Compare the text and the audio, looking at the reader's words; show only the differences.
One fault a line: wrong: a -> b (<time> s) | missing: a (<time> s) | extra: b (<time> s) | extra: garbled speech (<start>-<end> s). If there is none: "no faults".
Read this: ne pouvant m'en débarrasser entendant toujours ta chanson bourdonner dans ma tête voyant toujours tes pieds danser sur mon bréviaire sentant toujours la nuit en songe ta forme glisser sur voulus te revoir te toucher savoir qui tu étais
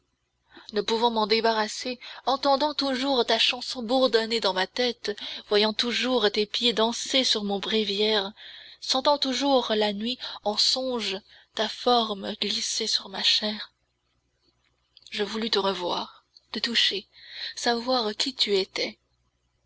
extra: ma chair je (13.1 s)